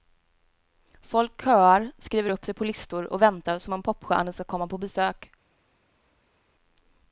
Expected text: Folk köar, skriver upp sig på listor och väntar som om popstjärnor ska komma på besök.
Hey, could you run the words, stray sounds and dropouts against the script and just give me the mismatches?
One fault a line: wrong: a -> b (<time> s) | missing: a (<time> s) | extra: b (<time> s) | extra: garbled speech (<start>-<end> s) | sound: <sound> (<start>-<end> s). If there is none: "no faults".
no faults